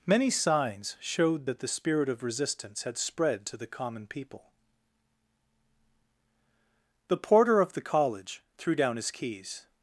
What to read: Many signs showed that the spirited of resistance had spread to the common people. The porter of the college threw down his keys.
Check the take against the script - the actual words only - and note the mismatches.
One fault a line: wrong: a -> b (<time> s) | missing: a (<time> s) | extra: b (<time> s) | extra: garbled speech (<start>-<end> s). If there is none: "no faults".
wrong: spirited -> spirit (1.7 s)